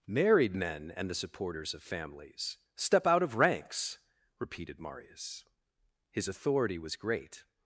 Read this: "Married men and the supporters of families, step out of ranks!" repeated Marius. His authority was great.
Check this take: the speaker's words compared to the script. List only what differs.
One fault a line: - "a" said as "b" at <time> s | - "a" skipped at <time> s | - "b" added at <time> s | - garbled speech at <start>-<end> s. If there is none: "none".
none